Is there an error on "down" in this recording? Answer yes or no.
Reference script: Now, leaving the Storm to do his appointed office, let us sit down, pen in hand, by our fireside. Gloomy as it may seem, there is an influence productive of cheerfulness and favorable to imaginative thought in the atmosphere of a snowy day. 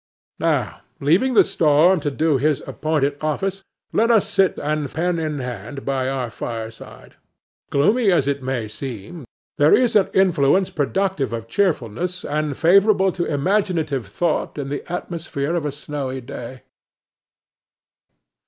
yes